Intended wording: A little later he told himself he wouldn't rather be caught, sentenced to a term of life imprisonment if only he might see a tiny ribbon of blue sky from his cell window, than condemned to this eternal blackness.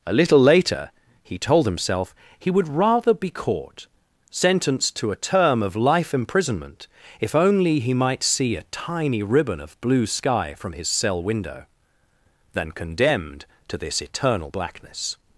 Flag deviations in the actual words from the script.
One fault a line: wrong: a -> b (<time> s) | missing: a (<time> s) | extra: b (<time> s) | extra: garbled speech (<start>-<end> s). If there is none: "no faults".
wrong: wouldn't -> would (2.5 s)